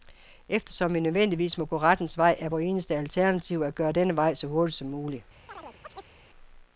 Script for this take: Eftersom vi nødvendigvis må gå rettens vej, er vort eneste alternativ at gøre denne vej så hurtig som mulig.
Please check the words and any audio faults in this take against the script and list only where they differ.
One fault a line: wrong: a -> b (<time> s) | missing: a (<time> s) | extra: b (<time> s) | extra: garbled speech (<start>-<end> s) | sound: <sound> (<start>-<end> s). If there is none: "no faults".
sound: chirp (5.5-6.1 s)